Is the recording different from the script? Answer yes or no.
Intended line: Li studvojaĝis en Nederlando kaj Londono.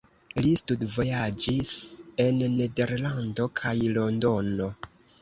no